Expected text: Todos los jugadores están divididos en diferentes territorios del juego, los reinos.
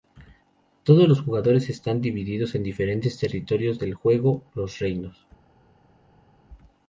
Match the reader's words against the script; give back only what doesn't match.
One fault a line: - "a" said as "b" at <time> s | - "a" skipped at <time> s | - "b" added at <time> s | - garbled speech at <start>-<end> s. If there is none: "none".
none